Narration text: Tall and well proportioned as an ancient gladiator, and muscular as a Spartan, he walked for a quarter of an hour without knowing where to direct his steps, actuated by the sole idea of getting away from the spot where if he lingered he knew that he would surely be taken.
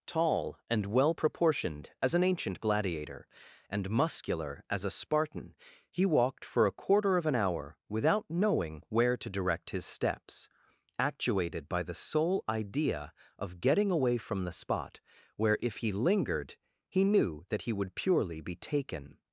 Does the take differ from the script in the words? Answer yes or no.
yes